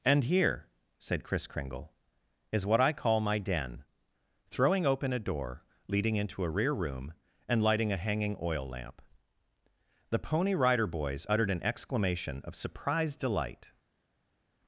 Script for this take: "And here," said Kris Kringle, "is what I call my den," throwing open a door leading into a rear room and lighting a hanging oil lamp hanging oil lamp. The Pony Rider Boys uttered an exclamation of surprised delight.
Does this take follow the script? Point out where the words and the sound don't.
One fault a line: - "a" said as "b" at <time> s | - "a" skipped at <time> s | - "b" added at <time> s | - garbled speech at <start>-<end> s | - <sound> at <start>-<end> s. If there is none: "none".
- "hanging oil lamp" skipped at 9.0 s